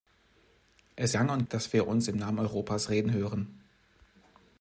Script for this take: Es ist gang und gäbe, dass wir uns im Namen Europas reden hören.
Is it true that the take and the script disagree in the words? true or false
true